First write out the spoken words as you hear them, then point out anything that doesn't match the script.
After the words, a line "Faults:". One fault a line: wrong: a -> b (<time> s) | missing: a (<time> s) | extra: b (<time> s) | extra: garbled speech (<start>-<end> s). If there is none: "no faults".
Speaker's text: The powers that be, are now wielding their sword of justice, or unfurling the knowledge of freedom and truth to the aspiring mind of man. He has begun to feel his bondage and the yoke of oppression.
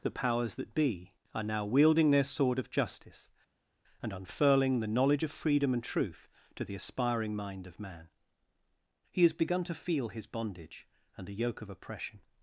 The powers that be, are now wielding their sword of justice, and unfurling the knowledge of freedom and truth to the aspiring mind of man. He has begun to feel his bondage and the yoke of oppression.
Faults:
wrong: or -> and (4.0 s)